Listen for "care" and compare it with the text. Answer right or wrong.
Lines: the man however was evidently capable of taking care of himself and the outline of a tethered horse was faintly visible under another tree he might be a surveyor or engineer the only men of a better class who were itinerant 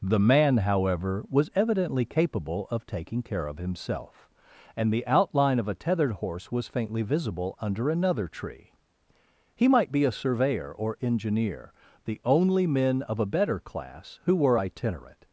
right